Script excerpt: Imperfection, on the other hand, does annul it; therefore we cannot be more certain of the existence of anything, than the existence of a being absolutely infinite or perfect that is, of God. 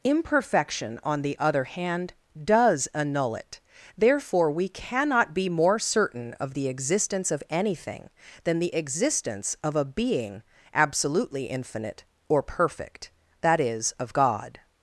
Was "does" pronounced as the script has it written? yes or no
yes